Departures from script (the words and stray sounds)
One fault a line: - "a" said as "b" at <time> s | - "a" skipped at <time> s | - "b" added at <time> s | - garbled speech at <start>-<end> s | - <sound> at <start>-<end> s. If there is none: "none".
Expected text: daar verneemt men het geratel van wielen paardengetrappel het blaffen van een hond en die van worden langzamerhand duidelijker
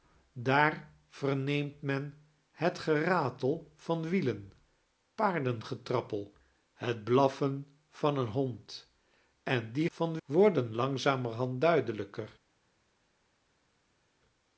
none